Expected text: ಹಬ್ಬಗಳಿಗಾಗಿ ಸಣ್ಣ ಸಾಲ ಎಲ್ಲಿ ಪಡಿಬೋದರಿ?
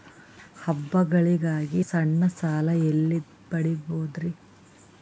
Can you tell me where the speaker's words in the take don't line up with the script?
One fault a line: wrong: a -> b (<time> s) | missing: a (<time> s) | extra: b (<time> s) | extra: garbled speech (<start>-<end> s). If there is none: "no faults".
no faults